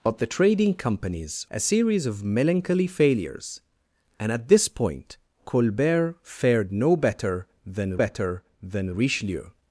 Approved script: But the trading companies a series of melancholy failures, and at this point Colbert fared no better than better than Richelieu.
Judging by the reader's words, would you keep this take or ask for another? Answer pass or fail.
pass